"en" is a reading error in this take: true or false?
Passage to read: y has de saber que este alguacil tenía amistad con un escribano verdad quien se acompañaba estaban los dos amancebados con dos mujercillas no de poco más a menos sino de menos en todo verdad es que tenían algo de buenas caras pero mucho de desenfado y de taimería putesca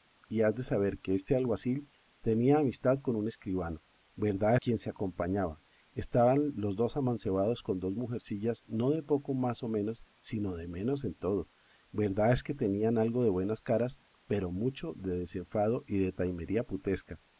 false